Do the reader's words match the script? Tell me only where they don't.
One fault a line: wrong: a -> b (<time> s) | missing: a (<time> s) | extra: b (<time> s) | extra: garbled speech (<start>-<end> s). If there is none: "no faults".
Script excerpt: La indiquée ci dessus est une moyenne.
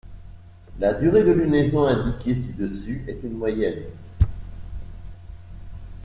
extra: durée de lunaison (0.9 s)